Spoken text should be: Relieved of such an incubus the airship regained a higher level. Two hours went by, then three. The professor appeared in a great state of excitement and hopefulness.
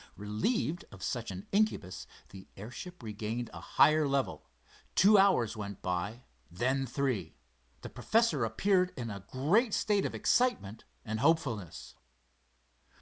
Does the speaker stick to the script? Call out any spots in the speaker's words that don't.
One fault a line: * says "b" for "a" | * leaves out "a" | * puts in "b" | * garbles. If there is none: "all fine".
all fine